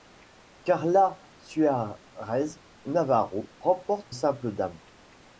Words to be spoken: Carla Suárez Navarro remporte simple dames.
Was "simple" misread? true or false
false